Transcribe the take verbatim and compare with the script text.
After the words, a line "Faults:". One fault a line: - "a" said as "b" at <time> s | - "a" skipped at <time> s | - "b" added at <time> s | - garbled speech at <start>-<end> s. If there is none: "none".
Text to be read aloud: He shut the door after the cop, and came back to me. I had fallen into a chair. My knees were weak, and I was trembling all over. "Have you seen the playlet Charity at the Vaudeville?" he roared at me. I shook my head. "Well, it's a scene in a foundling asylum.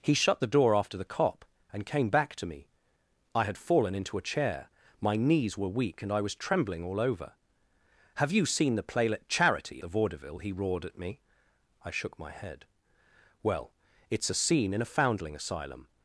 He shut the door after the cop, and came back to me. I had fallen into a chair. My knees were weak, and I was trembling all over. "Have you seen the playlet Charity the Vaudeville?" he roared at me. I shook my head. "Well, it's a scene in a foundling asylum.
Faults:
- "at" skipped at 9.8 s